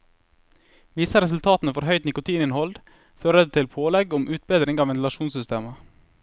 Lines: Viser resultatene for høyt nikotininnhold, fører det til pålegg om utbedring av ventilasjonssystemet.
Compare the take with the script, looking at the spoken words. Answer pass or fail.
pass